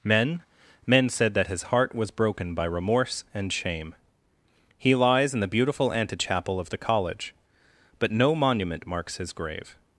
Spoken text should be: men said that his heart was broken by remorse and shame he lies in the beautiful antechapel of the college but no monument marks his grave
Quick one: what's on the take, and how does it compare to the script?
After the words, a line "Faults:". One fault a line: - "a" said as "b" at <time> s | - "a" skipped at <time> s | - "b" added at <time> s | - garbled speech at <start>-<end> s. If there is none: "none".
men men said that his heart was broken by remorse and shame he lies in the beautiful antechapel of the college but no monument marks his grave
Faults:
- "men" added at 0.9 s